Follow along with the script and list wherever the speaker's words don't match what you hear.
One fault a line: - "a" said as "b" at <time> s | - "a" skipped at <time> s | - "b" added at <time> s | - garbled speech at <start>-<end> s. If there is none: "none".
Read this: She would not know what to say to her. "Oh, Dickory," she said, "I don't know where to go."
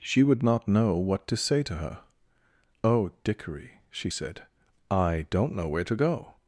none